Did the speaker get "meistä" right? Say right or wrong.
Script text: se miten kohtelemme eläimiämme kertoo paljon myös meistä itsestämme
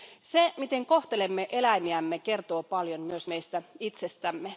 right